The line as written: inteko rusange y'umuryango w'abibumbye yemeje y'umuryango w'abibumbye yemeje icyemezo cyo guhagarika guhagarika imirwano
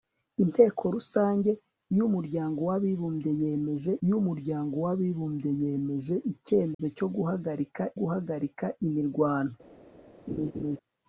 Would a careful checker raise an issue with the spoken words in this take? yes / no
no